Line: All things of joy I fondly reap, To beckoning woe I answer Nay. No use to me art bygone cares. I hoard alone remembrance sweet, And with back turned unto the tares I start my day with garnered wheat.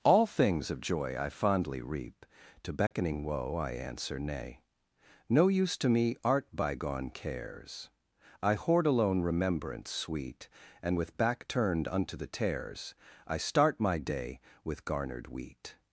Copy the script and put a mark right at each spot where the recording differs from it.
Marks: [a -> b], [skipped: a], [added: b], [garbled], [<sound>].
All things of joy I fondly reap, To beckoning [dropout] woe I answer Nay. No use to me art bygone cares. I hoard alone remembrance sweet, And with back turned unto the tares I start my day with garnered wheat.